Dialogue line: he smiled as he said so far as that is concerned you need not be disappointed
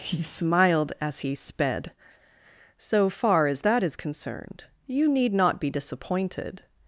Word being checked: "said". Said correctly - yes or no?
no